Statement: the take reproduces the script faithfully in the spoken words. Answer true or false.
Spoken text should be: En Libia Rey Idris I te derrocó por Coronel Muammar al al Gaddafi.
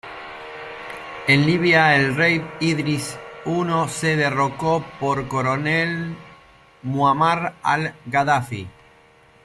false